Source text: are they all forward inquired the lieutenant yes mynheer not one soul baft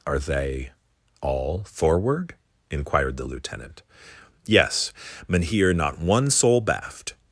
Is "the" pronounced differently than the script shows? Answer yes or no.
no